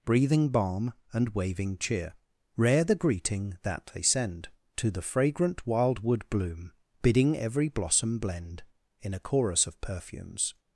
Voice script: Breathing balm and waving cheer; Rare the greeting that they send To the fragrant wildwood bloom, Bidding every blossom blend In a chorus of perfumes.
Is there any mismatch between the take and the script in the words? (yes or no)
no